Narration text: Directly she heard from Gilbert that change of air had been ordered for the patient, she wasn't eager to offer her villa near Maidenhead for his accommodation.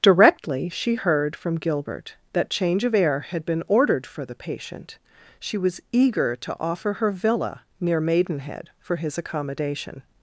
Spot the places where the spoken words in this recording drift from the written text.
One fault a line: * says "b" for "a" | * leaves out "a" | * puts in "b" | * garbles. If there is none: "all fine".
* says "was" for "wasn't"